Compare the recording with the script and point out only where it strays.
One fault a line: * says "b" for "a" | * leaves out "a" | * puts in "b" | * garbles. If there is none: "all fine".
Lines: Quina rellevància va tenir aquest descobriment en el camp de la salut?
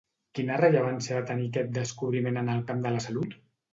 all fine